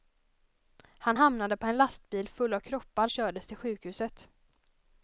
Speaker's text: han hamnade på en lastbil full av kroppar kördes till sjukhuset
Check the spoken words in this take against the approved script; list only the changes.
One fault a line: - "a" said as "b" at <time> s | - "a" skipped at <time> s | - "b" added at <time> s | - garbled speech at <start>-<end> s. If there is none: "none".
none